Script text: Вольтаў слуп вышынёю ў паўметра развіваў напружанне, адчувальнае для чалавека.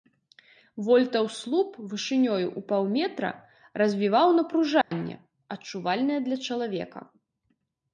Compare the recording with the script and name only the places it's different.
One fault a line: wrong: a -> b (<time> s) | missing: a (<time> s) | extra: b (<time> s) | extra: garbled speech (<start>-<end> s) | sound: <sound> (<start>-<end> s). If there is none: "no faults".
sound: dropout (4.8-4.9 s)